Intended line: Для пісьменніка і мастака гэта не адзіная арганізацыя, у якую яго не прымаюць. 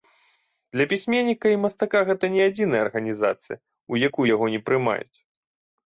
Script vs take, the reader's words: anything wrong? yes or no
no